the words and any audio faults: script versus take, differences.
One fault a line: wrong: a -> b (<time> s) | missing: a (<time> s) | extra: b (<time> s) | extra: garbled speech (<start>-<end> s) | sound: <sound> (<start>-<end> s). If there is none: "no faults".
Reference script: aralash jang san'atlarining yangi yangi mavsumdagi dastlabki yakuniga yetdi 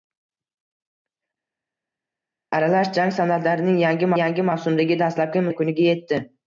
no faults